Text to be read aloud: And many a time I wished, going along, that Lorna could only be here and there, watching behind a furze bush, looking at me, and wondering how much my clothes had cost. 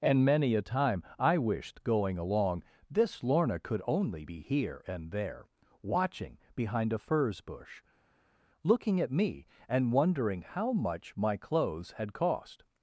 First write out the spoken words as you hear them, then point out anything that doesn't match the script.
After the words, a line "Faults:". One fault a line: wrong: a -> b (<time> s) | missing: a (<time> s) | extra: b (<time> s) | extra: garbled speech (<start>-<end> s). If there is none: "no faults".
And many a time I wished, going along, this Lorna could only be here and there, watching behind a furze bush, looking at me, and wondering how much my clothes had cost.
Faults:
wrong: that -> this (2.9 s)